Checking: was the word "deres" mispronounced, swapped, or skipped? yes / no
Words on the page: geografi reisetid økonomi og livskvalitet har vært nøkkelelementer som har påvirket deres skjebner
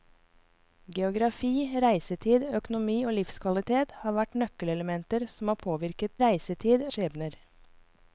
yes